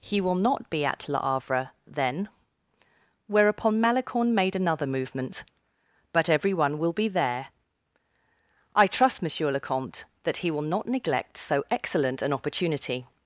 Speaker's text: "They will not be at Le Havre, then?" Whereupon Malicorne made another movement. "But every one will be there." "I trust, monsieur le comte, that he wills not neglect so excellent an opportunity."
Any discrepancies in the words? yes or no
yes